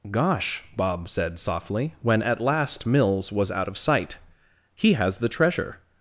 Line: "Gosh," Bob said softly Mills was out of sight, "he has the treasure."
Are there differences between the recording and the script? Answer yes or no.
yes